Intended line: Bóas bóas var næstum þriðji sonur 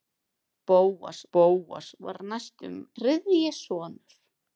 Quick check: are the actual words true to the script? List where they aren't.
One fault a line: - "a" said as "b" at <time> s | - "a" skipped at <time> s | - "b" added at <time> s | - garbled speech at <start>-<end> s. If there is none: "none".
none